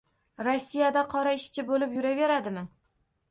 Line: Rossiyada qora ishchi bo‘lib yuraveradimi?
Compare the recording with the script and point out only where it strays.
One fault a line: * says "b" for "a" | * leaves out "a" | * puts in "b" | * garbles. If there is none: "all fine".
all fine